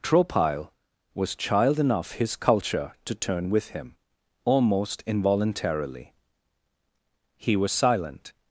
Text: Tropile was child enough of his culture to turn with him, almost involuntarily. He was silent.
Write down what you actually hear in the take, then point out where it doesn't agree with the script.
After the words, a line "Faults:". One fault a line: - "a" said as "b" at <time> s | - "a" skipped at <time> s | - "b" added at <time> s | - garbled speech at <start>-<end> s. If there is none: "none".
Tropile was child enough his culture to turn with him, almost involuntarily. He was silent.
Faults:
- "of" skipped at 2.1 s